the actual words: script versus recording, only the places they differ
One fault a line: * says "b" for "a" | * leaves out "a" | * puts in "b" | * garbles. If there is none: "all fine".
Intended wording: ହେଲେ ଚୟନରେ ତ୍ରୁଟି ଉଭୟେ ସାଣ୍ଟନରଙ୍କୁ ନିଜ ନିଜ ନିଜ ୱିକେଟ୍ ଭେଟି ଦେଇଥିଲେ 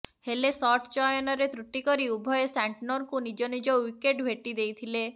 * puts in "ସଟ୍"
* puts in "କରି"
* leaves out "ନିଜ"